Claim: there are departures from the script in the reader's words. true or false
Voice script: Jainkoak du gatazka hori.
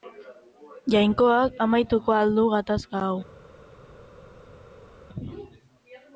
true